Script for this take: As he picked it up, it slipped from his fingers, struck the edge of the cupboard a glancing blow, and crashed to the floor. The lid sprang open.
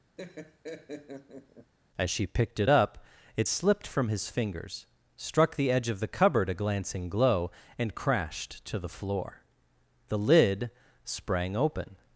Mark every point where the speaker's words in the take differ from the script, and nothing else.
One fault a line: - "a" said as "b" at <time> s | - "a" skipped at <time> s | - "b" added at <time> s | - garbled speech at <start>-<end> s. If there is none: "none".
- "he" said as "she" at 2.1 s
- "blow" said as "glow" at 7.1 s